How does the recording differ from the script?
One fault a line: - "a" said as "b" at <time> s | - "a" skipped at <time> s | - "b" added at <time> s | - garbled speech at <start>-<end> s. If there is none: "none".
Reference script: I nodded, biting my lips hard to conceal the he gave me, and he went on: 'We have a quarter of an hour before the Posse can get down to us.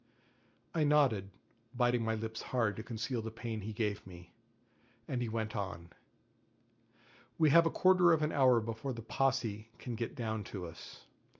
- "pain" added at 3.3 s